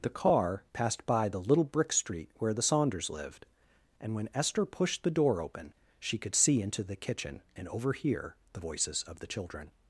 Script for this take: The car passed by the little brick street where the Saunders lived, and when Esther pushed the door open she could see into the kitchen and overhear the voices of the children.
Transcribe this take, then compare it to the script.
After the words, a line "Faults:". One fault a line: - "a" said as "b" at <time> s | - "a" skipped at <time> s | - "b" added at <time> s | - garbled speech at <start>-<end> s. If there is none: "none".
The car passed by the little brick street where the Saunders lived, and when Esther pushed the door open she could see into the kitchen and overhear the voices of the children.
Faults:
none